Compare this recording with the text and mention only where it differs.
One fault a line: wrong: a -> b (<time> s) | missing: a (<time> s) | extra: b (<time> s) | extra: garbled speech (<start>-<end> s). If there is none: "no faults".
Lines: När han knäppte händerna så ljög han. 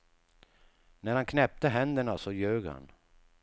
no faults